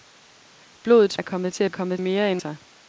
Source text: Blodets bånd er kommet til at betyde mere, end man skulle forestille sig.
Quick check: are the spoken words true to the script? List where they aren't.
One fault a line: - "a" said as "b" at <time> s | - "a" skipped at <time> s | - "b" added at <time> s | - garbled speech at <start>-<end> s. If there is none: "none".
- "bånd" skipped at 1.2 s
- "betyde" said as "kommet" at 1.7 s
- "man skulle forestille" skipped at 2.4 s